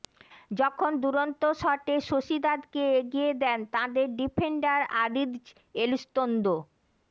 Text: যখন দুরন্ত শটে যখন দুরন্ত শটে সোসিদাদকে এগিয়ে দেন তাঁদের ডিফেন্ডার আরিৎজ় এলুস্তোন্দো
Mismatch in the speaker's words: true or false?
true